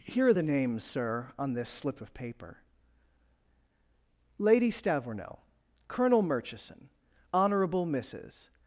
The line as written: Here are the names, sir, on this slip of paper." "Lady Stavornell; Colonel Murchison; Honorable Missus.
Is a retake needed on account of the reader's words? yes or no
no